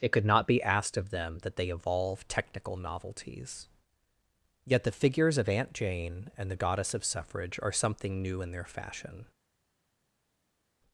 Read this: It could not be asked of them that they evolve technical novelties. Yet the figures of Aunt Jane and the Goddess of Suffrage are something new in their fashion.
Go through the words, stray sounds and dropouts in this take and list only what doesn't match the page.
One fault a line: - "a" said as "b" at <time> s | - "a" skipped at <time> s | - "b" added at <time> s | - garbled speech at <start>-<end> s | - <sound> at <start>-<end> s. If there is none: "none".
none